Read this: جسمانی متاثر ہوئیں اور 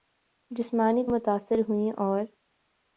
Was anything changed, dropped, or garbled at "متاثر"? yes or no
no